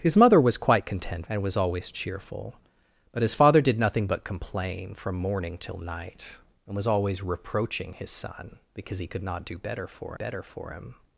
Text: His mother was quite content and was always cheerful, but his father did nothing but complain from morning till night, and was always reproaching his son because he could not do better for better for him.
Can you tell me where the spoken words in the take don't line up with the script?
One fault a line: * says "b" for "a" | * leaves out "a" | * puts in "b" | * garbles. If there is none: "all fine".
all fine